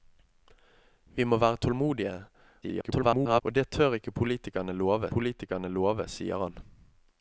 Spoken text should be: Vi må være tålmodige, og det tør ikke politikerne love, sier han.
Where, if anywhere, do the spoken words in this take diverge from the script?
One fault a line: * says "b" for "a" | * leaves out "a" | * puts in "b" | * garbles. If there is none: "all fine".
* garbles
* puts in "politikerne love"